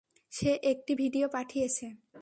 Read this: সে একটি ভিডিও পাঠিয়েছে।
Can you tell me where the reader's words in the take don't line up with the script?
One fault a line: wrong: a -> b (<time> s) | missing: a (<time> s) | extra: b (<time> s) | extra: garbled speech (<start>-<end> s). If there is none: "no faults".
no faults